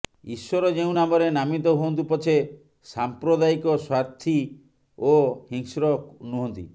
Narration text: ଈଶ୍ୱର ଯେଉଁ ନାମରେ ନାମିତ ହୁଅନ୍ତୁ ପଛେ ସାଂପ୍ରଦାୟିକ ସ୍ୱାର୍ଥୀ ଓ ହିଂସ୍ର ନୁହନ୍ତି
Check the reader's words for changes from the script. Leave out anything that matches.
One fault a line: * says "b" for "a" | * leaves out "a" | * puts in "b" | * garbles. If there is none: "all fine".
all fine